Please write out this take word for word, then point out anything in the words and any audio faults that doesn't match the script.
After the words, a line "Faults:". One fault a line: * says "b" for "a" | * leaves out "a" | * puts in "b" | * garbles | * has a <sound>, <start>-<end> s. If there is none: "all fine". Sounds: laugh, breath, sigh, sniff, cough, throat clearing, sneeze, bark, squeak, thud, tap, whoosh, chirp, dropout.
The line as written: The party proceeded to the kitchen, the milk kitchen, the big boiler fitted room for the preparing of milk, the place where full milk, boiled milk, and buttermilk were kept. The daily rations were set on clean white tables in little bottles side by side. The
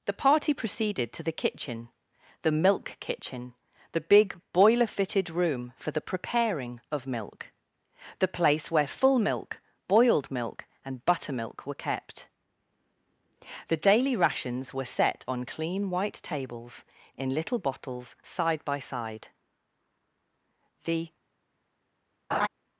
The party proceeded to the kitchen, the milk kitchen, the big boiler fitted room for the preparing of milk, the place where full milk, boiled milk, and buttermilk were kept. The daily rations were set on clean white tables in little bottles side by side. The
Faults:
* has a laugh, 22.3-22.5 s